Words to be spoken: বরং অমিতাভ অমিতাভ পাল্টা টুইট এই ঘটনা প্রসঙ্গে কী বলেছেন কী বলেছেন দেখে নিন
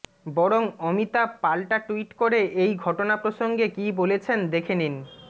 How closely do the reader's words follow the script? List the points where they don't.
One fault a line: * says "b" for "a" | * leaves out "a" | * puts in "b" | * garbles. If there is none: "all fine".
* leaves out "অমিতাভ"
* puts in "করে"
* leaves out "কী বলেছেন"